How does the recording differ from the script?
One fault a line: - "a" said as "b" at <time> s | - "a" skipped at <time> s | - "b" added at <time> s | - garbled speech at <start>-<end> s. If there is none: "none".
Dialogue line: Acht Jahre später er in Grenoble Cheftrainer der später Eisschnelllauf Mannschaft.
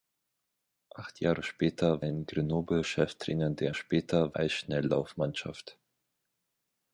none